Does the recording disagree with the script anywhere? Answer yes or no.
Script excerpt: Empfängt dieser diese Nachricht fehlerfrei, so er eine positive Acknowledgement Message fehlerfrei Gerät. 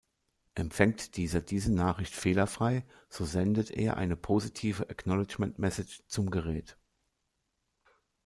yes